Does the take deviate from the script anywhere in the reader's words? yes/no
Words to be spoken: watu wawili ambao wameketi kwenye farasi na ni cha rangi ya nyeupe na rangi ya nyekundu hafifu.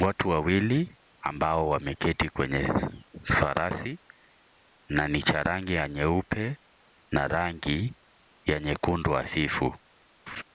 no